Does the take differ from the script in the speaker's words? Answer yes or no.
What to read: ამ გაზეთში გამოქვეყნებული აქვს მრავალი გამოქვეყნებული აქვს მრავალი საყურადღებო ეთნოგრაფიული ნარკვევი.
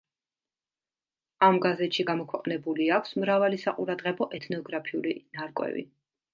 yes